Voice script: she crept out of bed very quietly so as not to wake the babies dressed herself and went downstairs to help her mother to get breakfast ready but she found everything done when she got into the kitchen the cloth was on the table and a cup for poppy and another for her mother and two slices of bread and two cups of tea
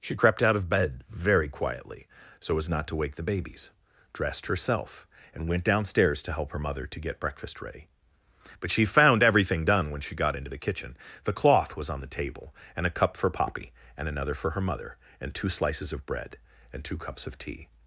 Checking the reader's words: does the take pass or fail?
pass